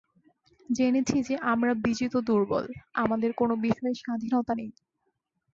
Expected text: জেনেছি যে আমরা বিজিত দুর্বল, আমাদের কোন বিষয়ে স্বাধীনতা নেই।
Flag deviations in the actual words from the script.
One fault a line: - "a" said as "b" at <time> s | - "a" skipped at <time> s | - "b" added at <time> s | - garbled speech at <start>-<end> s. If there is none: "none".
none